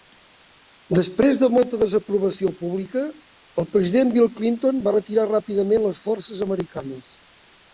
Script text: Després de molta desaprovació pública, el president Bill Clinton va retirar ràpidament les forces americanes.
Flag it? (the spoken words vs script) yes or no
no